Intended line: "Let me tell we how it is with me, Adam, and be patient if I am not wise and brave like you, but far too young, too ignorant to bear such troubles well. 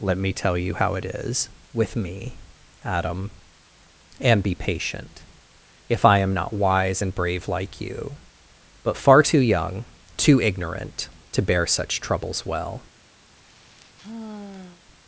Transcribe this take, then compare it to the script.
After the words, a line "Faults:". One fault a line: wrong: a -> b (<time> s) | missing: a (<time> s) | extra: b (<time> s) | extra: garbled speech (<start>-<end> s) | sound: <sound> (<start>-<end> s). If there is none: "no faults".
"Let me tell you how it is with me, Adam, and be patient if I am not wise and brave like you, but far too young, too ignorant to bear such troubles well.
Faults:
wrong: we -> you (0.6 s)
sound: sigh (13.3-14.8 s)